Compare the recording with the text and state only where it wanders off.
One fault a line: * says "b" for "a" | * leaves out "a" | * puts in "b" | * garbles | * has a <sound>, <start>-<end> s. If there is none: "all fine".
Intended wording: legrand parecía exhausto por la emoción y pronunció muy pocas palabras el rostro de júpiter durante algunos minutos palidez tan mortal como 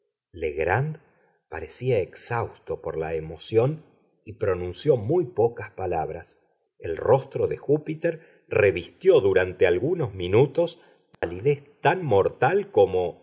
* puts in "revistió"
* has a dropout, 11.1-11.2 s